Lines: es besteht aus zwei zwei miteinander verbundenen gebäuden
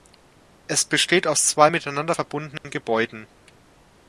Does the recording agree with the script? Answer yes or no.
no